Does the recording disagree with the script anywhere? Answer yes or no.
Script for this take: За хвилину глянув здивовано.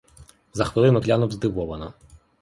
no